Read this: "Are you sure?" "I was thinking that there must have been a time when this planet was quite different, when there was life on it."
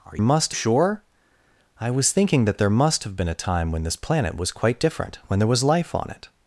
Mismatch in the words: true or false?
true